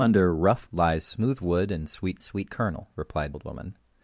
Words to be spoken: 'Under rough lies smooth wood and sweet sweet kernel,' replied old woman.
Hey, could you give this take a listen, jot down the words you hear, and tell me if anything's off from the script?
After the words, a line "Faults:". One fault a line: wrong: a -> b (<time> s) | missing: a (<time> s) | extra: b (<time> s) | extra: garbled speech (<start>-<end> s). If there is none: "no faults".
'Under rough lies smooth wood and sweet sweet kernel,' replied old woman.
Faults:
no faults